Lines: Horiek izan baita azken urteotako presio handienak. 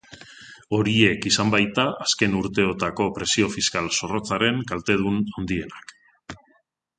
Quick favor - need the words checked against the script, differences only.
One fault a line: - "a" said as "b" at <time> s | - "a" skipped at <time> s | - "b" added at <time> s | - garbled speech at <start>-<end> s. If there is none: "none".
- "fiskal zorrotzaren kaltedun" added at 3.6 s